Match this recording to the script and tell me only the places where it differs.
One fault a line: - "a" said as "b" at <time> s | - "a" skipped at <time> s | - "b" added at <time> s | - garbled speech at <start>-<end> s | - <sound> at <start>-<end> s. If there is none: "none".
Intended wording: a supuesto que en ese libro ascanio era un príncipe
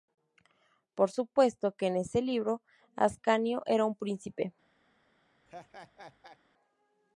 - "a" said as "por" at 0.9 s
- laugh at 5.5-6.4 s